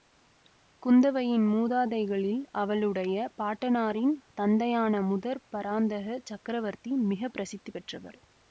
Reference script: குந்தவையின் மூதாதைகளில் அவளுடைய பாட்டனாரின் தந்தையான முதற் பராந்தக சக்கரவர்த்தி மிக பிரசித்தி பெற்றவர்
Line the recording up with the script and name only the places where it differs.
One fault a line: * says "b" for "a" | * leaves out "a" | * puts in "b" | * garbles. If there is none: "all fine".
all fine